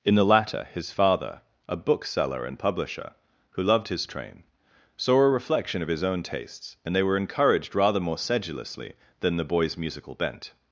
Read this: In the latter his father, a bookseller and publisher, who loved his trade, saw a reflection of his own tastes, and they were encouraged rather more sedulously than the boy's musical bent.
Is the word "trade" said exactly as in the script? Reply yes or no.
no